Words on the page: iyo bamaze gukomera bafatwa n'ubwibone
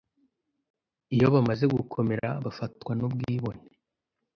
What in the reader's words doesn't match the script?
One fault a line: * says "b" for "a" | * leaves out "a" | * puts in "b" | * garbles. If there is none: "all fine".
all fine